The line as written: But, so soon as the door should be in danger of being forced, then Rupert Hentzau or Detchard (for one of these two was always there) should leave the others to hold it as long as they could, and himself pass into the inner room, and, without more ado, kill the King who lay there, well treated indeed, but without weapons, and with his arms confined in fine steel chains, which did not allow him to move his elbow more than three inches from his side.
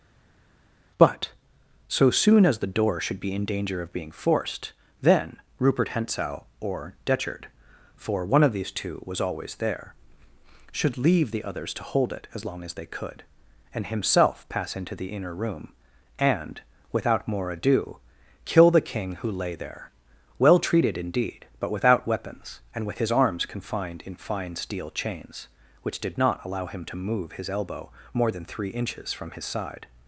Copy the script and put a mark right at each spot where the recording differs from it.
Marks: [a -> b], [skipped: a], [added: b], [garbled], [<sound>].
But, so soon as the door should be in danger of being forced, then Rupert Hentzau or Detchard (for one of these two was always there) should leave the others to hold it as long as they could, and himself pass into the inner room, and, without more ado, kill the King who lay there, well treated indeed, but without weapons, and with his arms confined in fine steel chains, which did not allow him to move his elbow more than three inches from his side.